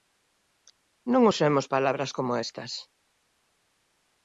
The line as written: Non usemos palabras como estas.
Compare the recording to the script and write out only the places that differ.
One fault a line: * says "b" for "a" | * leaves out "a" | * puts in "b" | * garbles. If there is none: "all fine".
all fine